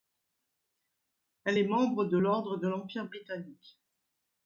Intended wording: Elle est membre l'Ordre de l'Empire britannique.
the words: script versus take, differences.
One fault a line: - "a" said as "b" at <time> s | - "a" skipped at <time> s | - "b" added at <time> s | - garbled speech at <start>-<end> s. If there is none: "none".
- "de" added at 2.0 s